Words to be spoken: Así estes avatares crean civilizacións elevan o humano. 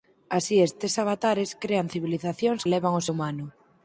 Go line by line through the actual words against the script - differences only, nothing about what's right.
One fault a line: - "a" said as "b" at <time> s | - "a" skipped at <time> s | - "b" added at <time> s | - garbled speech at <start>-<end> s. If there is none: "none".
none